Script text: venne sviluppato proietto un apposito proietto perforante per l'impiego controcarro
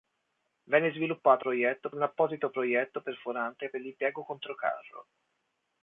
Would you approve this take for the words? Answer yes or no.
yes